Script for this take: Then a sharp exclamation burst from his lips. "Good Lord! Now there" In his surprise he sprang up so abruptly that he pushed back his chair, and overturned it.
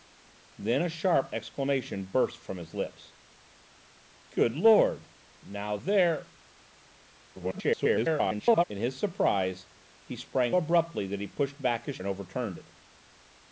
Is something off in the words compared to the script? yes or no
yes